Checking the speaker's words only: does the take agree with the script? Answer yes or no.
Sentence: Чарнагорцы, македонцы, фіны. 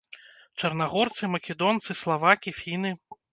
no